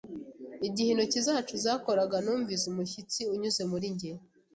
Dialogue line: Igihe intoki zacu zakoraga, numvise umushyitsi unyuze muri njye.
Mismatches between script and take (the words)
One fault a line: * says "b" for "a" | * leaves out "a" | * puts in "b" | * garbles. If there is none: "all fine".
all fine